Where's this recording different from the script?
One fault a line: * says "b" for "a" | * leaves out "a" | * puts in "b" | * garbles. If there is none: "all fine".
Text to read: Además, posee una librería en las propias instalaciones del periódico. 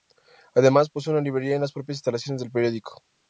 all fine